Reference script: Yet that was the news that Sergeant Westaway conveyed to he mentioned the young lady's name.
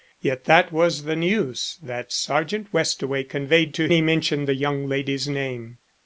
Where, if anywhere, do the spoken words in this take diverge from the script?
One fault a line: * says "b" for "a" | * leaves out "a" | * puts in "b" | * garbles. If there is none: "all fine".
all fine